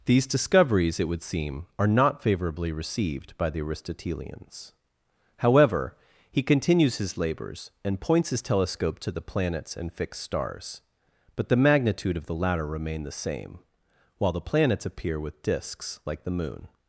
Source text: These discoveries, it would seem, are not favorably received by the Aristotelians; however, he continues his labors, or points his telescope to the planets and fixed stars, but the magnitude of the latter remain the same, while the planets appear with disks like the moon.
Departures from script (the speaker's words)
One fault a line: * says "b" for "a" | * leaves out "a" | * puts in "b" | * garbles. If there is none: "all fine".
* says "and" for "or"